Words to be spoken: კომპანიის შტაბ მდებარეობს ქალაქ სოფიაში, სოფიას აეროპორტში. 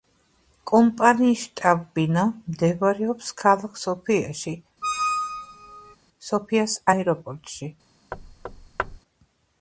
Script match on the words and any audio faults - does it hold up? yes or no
no